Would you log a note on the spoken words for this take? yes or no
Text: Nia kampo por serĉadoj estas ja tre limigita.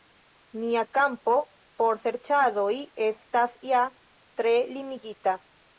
no